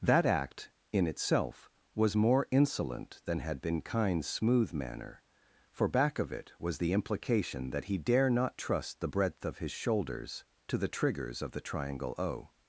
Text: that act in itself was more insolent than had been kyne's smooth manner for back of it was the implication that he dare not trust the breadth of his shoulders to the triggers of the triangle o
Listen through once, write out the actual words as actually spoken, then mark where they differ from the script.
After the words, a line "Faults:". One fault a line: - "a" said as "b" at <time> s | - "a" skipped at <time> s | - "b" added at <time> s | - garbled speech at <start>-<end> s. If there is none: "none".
that act in itself was more insolent than had been kyne's smooth manner for back of it was the implication that he dare not trust the breadth of his shoulders to the triggers of the triangle o
Faults:
none